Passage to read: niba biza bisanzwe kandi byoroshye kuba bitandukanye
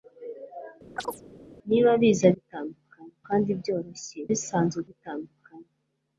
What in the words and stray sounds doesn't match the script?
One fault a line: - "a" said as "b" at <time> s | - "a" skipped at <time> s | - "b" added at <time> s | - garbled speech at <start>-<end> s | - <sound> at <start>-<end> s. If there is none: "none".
- chirp at 1.0-1.2 s
- "bisanzwe" said as "bitandukanye" at 2.3 s
- "kuba" said as "bisanzwe" at 4.3 s